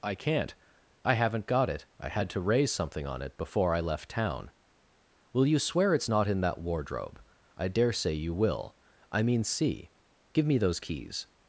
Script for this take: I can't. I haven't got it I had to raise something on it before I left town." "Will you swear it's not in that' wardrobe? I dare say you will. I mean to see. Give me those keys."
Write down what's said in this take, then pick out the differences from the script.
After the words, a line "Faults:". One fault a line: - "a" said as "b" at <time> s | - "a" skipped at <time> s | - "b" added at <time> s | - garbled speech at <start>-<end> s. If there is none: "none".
I can't. I haven't got it I had to raise something on it before I left town." "Will you swear it's not in that' wardrobe? I dare say you will. I mean see. Give me those keys."
Faults:
- "to" skipped at 9.4 s